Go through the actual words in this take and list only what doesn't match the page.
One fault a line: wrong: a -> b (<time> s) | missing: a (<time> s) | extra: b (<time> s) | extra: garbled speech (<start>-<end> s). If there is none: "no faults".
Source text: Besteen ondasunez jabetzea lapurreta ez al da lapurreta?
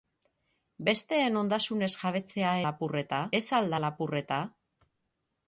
no faults